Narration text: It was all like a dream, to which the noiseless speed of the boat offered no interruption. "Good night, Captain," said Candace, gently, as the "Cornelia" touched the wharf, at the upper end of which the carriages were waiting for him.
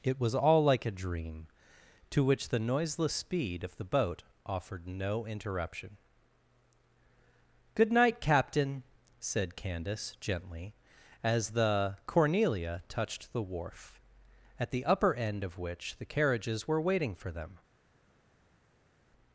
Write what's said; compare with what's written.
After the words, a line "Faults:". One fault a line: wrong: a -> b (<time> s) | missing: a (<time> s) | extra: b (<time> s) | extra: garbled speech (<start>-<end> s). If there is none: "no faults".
It was all like a dream, to which the noiseless speed of the boat offered no interruption. "Good night, Captain," said Candace, gently, as the "Cornelia" touched the wharf, at the upper end of which the carriages were waiting for them.
Faults:
wrong: him -> them (17.3 s)